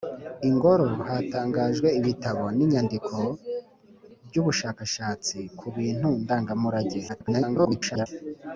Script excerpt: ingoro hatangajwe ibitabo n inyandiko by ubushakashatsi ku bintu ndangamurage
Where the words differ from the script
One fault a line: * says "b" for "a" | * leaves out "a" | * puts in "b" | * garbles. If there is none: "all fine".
* garbles